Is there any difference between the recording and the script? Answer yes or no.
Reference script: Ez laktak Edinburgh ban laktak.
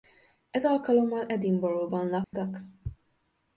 yes